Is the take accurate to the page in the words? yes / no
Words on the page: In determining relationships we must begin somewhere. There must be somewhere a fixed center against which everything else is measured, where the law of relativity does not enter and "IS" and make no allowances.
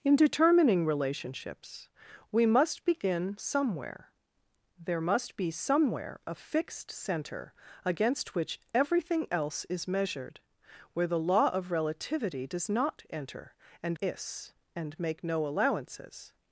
yes